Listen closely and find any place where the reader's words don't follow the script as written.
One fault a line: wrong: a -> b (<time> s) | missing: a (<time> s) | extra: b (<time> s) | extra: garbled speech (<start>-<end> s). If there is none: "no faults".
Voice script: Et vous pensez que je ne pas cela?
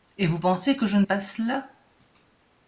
no faults